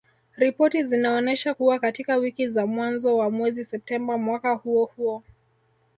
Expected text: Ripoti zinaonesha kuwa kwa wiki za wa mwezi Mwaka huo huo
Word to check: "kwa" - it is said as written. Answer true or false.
false